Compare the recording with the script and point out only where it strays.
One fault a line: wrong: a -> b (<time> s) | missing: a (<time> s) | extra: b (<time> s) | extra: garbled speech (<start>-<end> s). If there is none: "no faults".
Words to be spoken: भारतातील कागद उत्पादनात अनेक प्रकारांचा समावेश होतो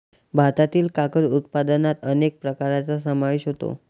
no faults